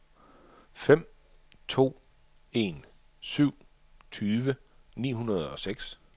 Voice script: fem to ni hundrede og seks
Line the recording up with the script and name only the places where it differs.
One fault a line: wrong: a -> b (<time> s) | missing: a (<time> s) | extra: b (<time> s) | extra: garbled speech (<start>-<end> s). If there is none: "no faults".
extra: en syv tyve (2.5 s)